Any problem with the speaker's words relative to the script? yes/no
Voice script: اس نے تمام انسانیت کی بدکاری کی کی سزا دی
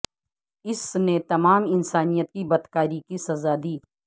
yes